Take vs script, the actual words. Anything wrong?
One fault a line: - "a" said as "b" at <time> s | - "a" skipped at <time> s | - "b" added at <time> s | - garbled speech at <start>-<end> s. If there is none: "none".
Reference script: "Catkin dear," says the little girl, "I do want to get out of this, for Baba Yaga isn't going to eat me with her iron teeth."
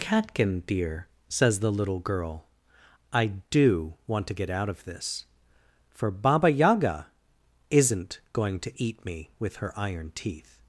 none